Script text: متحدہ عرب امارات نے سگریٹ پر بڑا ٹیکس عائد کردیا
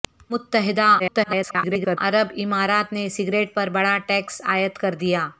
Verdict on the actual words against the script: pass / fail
fail